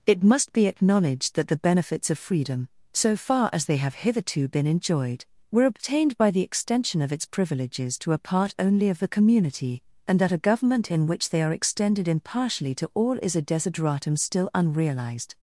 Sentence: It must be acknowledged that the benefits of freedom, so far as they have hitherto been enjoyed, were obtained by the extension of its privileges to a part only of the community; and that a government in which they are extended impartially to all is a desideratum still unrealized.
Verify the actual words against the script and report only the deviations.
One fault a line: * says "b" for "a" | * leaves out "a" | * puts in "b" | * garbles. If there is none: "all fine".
all fine